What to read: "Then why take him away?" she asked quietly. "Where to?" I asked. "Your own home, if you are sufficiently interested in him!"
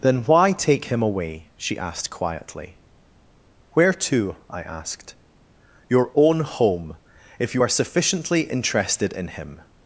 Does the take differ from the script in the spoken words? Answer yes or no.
no